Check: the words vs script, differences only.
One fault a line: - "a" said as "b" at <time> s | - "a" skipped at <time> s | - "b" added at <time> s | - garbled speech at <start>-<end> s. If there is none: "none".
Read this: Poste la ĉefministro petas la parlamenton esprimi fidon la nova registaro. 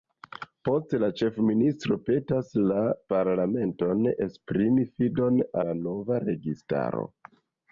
none